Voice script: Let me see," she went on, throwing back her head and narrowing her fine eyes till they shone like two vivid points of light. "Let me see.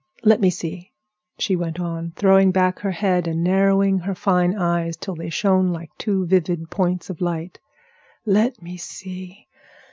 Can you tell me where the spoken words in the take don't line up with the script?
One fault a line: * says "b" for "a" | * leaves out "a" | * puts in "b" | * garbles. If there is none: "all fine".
all fine